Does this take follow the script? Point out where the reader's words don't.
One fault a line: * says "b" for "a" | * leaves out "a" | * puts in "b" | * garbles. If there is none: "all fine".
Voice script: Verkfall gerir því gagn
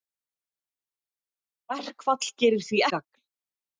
all fine